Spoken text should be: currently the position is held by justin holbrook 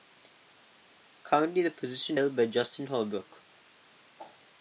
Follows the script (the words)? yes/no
no